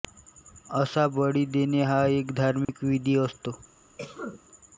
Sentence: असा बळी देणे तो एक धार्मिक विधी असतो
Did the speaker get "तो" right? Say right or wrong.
wrong